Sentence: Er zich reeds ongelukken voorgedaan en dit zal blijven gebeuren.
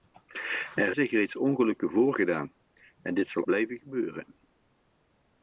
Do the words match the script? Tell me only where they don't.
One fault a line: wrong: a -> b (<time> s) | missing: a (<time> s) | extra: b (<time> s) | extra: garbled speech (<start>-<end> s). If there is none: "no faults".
no faults